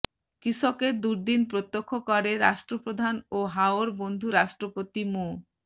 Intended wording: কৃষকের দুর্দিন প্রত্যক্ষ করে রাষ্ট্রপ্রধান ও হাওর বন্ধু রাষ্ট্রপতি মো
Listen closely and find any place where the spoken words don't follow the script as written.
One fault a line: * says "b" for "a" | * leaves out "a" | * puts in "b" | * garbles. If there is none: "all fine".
all fine